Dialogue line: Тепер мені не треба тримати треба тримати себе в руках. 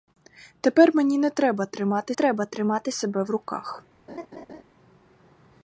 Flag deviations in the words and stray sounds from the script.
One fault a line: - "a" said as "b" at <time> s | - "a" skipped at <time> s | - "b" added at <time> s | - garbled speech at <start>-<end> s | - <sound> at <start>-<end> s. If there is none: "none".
- laugh at 4.1-4.6 s